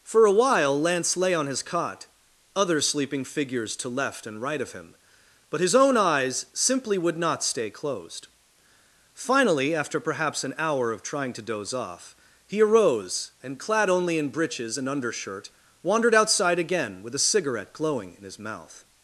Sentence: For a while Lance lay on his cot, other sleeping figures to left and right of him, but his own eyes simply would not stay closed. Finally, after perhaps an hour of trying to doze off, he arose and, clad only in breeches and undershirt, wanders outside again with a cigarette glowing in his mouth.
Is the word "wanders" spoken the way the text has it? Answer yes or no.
no